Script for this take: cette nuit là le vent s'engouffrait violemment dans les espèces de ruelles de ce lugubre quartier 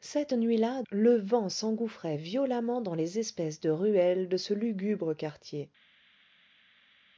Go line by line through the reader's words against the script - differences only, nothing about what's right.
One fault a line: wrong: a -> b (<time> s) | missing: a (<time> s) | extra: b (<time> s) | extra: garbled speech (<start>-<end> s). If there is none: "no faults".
no faults